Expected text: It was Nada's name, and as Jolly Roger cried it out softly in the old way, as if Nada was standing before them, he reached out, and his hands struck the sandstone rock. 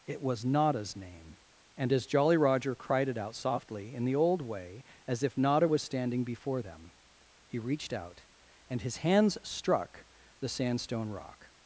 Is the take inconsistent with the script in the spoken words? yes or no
no